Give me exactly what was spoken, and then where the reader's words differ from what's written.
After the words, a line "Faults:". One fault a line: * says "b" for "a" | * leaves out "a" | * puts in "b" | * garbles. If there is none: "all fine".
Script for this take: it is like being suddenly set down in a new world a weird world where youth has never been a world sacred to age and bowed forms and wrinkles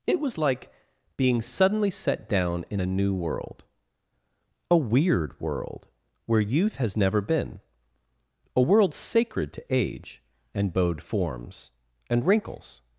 it was like being suddenly set down in a new world a weird world where youth has never been a world sacred to age and bowed forms and wrinkles
Faults:
* says "was" for "is"